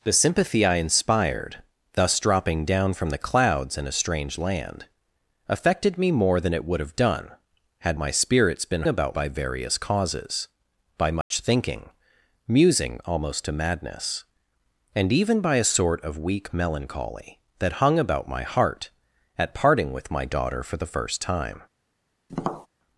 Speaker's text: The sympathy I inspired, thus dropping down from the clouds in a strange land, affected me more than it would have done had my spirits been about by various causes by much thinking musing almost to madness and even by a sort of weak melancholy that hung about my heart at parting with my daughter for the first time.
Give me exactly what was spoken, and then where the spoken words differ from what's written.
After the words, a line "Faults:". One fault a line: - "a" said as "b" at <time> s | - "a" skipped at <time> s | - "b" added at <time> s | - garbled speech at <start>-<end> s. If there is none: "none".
The sympathy I inspired, thus dropping down from the clouds in a strange land, affected me more than it would have done had my spirits been about by various causes by much thinking musing almost to madness and even by a sort of weak melancholy that hung about my heart at parting with my daughter for the first time.
Faults:
none